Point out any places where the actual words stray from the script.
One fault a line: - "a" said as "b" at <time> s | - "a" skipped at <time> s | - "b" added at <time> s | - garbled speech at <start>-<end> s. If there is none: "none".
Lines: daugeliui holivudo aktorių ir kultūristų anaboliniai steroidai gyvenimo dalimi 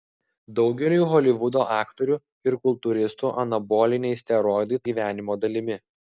none